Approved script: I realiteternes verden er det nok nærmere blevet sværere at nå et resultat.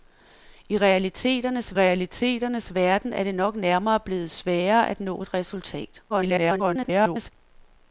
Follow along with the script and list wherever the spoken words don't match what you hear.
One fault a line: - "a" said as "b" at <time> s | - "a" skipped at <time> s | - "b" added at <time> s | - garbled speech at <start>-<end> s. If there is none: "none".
- "realiteternes" added at 1.7 s
- garbled speech at 6.1-7.3 s